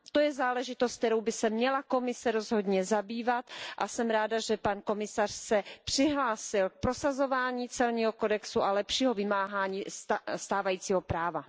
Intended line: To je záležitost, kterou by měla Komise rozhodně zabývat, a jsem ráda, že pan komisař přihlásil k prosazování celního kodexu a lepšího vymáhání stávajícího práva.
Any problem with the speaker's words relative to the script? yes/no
yes